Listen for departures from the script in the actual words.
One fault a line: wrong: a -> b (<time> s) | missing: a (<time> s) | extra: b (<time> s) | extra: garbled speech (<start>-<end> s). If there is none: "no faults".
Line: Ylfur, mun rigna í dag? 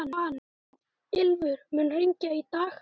no faults